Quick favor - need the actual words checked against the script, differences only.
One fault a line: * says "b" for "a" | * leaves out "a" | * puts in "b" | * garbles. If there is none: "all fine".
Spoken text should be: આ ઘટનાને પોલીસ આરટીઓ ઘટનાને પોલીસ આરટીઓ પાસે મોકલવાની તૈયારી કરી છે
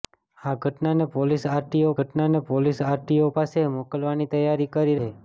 all fine